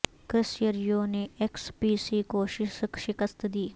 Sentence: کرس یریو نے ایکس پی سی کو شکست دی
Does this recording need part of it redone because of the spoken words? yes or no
no